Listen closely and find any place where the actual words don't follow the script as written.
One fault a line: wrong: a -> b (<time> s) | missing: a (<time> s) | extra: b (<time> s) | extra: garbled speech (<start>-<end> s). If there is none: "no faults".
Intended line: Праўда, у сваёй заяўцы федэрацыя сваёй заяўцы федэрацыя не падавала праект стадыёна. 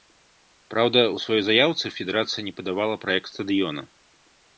missing: сваёй заяўцы федэрацыя (2.4 s)